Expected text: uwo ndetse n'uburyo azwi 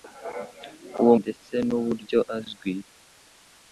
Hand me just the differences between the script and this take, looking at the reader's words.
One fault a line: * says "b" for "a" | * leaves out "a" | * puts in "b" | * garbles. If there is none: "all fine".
all fine